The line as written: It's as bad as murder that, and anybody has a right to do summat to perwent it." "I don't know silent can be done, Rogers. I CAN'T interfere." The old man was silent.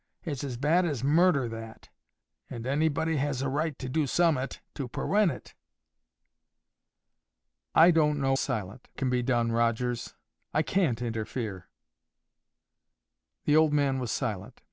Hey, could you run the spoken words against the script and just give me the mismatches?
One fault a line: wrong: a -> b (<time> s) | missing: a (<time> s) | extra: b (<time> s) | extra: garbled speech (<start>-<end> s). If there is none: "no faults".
no faults